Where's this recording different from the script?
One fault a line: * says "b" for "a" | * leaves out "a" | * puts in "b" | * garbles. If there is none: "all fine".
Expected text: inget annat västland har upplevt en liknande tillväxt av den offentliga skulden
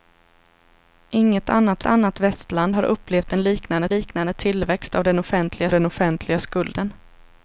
* puts in "annat"
* puts in "liknande"
* puts in "den offentliga"